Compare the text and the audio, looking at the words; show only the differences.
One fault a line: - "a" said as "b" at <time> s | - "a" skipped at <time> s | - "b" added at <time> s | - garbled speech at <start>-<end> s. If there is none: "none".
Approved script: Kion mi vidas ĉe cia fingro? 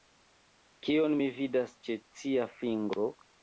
none